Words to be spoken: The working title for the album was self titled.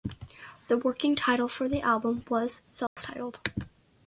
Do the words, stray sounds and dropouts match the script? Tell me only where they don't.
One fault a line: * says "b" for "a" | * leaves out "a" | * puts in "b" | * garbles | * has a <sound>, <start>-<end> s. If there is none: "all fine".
* has a dropout, 2.9-3.0 s